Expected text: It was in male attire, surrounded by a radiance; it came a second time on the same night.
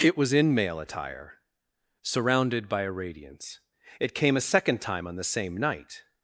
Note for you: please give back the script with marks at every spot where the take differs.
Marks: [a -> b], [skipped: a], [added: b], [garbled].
It was in male attire, surrounded by a radiance; it came a second time on the same night.